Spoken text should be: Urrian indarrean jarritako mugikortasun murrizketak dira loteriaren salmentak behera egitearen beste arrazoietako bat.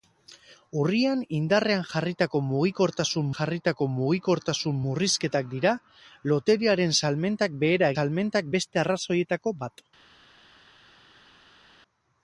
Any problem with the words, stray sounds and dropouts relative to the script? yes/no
yes